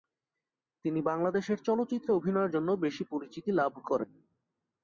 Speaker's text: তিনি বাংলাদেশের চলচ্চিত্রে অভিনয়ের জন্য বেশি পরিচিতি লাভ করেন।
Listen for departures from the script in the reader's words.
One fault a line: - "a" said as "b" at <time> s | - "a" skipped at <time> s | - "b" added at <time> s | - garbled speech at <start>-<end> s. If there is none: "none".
none